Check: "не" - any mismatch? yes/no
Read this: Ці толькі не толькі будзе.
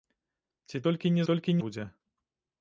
no